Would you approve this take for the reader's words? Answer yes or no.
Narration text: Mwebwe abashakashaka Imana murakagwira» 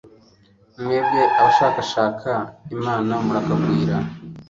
yes